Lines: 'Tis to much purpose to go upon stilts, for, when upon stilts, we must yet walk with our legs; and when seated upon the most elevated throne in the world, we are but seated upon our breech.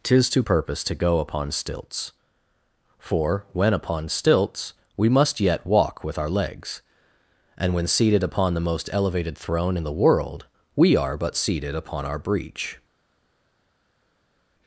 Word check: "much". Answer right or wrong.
wrong